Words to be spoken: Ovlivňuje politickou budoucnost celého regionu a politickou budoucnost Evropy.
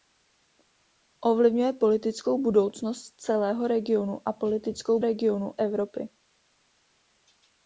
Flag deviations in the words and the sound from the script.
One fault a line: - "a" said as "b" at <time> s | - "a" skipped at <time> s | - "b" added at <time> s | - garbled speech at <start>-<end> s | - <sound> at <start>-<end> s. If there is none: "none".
- "budoucnost" said as "regionu" at 5.0 s